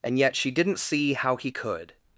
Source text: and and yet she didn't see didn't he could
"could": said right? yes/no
yes